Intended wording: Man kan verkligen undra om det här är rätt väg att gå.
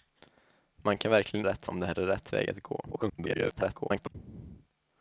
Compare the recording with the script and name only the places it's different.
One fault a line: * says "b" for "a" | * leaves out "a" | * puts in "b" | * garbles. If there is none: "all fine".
* says "rätt" for "undra"
* garbles